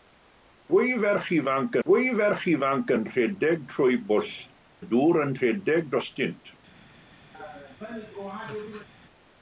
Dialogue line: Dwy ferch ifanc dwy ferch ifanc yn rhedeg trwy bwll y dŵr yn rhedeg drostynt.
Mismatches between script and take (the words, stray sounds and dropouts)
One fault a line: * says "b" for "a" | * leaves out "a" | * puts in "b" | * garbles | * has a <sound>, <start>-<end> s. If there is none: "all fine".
* has a laugh, 7.3-8.9 s